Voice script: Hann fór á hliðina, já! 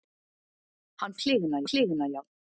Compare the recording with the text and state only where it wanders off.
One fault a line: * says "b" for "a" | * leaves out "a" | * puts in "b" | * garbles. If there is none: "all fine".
* says "hliðina" for "fór"